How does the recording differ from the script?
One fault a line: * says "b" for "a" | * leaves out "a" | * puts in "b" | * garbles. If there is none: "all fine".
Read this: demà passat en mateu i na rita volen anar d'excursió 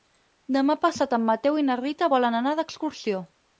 all fine